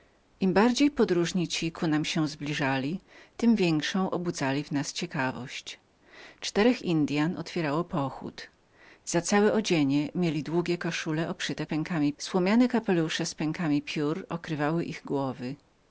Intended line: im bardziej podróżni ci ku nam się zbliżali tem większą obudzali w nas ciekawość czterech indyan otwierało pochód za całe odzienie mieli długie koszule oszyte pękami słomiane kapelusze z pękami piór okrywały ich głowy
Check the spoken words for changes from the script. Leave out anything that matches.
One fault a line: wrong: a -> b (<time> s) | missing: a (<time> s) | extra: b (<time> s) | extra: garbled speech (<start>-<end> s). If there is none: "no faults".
no faults